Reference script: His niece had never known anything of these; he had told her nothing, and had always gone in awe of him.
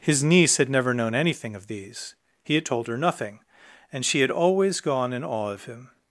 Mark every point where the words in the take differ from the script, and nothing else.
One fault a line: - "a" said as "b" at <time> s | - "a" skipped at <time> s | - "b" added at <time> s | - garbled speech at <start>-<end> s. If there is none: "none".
- "she" added at 4.0 s